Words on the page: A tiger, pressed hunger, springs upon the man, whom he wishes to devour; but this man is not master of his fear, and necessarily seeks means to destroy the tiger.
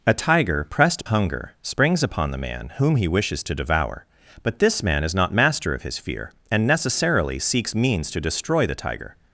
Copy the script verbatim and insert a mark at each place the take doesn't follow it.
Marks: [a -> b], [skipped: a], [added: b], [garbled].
A tiger, pressed hunger, springs upon the man, whom he wishes to devour; but this man is not master of his fear, and necessarily seeks means to destroy the tiger.